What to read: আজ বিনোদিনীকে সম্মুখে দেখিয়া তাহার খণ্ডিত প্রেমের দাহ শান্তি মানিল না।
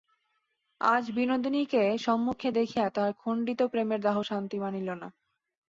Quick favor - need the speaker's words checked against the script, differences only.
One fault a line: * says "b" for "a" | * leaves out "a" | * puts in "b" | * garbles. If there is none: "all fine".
all fine